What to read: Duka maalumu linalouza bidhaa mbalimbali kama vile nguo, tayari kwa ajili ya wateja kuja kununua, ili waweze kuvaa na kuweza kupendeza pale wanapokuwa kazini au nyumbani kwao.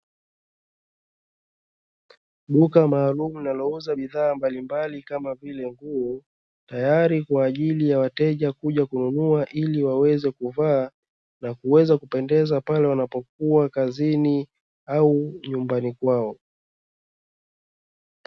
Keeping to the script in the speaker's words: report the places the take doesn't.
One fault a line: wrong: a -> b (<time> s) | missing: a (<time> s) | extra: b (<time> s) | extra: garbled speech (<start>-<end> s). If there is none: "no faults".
no faults